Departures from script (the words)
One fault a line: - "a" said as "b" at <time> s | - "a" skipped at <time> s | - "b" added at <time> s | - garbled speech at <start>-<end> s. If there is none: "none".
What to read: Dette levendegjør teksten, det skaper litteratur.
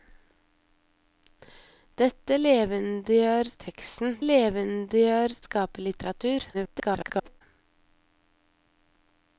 - "det" said as "levendegjør" at 4.2 s
- garbled speech at 6.5-7.4 s